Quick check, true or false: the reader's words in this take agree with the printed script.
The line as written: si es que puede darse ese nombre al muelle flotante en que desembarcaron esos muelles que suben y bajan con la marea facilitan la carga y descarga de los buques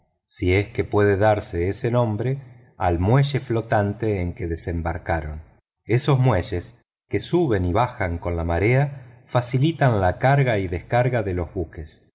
true